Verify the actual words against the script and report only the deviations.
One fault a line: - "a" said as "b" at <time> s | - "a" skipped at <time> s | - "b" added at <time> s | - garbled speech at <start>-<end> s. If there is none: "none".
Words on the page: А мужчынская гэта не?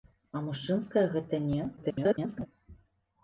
- garbled speech at 1.8-2.5 s